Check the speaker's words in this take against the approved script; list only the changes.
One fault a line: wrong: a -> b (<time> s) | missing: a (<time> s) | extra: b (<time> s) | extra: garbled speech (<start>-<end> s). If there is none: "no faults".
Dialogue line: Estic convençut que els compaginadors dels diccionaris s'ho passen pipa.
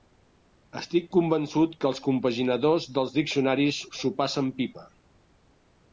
no faults